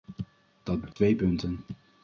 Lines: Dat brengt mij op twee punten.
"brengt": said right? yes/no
no